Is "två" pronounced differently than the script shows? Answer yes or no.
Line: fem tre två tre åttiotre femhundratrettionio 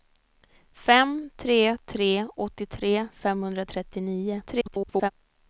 yes